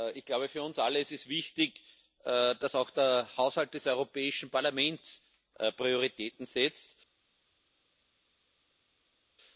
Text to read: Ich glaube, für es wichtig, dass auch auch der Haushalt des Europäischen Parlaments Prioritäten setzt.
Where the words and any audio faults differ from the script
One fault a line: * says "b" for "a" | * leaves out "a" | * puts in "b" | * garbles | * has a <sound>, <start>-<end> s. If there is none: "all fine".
* puts in "uns alle ist"
* leaves out "auch"